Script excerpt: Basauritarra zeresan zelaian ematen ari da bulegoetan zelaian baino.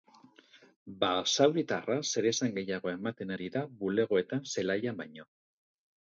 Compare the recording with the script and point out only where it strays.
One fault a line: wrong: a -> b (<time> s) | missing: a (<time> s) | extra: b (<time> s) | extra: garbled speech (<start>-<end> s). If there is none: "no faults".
wrong: zelaian -> gehiago (2.5 s)